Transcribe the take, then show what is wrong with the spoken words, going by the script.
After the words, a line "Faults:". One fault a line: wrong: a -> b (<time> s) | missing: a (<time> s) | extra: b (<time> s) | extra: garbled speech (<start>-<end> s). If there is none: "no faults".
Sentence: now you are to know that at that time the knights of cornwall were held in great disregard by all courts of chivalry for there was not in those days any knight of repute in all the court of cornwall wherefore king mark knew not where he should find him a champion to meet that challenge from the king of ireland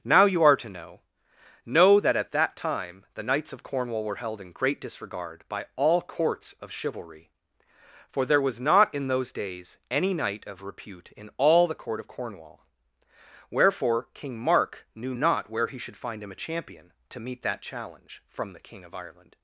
now you are to know know that at that time the knights of cornwall were held in great disregard by all courts of chivalry for there was not in those days any knight of repute in all the court of cornwall wherefore king mark knew not where he should find him a champion to meet that challenge from the king of ireland
Faults:
extra: know (1.6 s)